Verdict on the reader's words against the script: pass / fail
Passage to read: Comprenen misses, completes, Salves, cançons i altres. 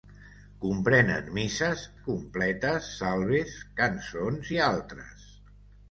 pass